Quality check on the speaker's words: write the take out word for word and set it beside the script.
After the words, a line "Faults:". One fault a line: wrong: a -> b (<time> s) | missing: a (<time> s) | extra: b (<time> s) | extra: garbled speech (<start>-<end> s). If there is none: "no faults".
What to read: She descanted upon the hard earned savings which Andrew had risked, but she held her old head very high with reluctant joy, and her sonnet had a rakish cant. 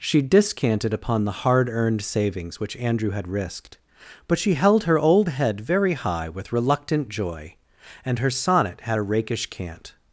She descanted upon the hard earned savings which Andrew had risked, but she held her old head very high with reluctant joy, and her sonnet had a rakish cant.
Faults:
no faults